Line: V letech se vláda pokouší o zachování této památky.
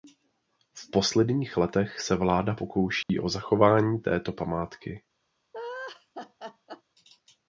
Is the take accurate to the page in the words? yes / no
no